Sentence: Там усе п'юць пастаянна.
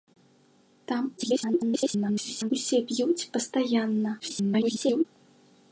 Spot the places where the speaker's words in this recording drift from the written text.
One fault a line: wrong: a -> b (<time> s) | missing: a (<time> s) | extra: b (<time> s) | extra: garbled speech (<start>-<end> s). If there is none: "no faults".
extra: garbled speech (1.2-2.5 s)
extra: garbled speech (4.2-5.0 s)